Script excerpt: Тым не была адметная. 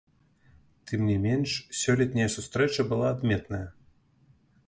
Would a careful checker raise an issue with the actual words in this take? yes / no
yes